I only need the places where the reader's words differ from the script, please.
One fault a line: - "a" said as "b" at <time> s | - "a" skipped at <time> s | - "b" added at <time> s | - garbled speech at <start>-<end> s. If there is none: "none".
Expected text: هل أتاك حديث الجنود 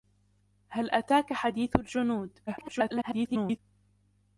- garbled speech at 2.5-3.6 s